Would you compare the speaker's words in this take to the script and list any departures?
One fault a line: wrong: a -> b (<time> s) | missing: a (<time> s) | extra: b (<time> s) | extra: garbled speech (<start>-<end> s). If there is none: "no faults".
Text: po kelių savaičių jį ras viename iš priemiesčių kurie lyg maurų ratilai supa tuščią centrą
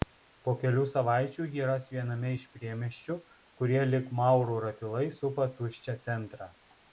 no faults